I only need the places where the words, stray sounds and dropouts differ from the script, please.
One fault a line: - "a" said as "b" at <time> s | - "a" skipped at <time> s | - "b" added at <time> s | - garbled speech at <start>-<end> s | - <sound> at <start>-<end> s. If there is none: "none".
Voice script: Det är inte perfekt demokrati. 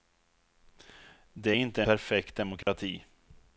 - dropout at 2.6-2.7 s